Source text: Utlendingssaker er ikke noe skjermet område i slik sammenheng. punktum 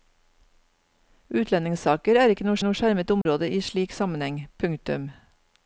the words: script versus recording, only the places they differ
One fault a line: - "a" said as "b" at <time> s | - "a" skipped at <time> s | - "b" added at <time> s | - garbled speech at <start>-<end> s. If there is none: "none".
- "noe" added at 2.6 s